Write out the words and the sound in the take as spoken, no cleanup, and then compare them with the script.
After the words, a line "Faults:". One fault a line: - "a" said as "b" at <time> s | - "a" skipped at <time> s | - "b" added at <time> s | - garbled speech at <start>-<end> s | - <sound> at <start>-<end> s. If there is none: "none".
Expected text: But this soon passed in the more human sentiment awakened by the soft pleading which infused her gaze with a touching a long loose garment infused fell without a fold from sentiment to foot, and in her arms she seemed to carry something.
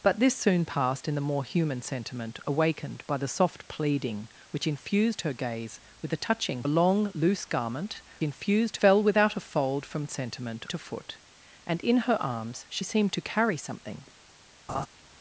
But this soon passed in the more human sentiment awakened by the soft pleading which infused her gaze with a touching a long loose garment infused fell without a fold from sentiment to foot, and in her arms she seemed to carry something.
Faults:
- laugh at 14.7-14.9 s